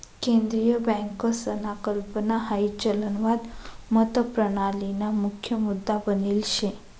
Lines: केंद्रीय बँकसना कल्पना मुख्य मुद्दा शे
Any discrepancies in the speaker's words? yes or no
yes